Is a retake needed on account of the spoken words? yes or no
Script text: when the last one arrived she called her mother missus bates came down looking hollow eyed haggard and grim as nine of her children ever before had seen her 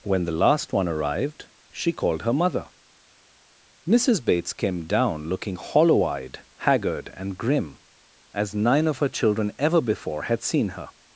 no